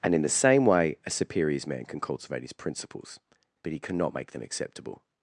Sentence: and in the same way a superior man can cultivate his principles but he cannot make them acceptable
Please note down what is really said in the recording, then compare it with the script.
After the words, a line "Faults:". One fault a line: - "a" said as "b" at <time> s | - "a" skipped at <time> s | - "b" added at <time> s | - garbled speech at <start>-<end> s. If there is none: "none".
and in the same way a superiors man can cultivate his principles but he cannot make them acceptable
Faults:
- "superior" said as "superiors" at 1.1 s